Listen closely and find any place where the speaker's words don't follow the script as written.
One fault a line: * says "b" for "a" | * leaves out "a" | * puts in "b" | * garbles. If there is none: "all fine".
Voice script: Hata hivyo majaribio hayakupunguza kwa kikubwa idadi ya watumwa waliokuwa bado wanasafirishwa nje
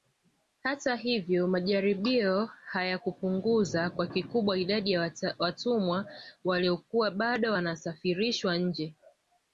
all fine